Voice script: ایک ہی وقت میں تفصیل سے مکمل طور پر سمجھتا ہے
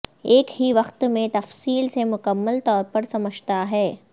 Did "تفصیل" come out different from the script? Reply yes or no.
no